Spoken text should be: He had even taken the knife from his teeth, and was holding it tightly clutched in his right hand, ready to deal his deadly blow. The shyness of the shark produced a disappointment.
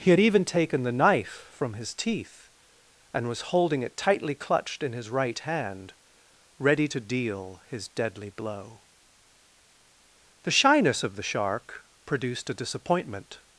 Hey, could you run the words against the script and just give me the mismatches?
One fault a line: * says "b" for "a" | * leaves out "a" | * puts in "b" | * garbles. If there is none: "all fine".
all fine